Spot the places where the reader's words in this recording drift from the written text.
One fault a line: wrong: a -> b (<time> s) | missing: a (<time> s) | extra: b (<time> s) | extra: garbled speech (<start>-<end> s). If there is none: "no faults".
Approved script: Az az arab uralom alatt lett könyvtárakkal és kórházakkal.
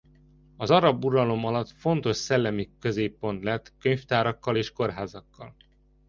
missing: az (0.7 s)
extra: fontos szellemi középpont (1.7 s)